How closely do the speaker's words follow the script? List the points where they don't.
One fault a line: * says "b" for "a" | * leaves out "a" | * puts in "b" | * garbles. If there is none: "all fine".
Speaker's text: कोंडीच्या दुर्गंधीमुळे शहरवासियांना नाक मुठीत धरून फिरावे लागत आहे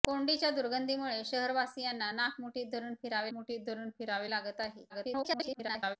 * puts in "मुठीत धरून फिरावे"
* garbles